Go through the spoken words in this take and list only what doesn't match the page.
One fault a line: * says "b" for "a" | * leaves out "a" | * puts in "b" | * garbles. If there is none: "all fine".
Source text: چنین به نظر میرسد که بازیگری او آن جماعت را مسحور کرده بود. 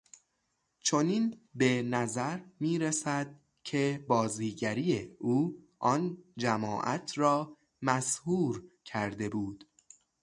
all fine